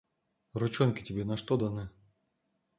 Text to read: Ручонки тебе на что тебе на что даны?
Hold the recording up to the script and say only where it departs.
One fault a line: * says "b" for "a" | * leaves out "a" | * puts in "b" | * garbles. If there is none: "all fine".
* leaves out "тебе на что"